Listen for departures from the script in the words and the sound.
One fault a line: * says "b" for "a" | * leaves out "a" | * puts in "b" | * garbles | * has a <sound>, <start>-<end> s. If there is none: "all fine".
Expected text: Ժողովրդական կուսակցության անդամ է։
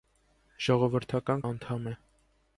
* leaves out "կուսակցության"